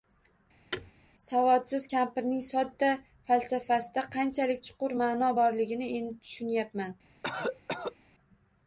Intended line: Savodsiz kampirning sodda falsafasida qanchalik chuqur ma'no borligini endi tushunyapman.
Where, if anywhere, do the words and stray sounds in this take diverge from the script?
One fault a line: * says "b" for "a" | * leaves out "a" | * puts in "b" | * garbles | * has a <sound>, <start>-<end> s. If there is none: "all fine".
* has a thud, 0.7-0.9 s
* has a cough, 7.2-8.0 s